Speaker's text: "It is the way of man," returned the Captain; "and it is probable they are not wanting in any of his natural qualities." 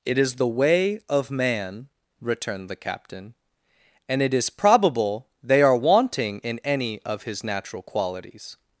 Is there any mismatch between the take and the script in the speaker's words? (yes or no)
yes